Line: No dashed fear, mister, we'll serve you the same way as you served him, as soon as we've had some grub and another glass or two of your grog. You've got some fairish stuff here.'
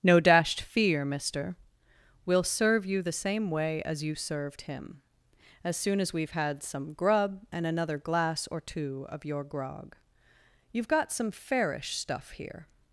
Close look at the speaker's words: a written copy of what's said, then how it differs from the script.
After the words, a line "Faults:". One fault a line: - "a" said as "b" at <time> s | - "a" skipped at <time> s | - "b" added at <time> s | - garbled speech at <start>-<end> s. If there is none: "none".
No dashed fear, mister, we'll serve you the same way as you served him, as soon as we've had some grub and another glass or two of your grog. You've got some fairish stuff here.'
Faults:
none